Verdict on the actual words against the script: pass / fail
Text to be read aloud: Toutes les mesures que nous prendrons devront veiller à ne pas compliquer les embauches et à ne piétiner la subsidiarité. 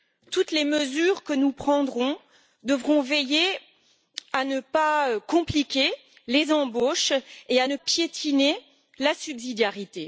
pass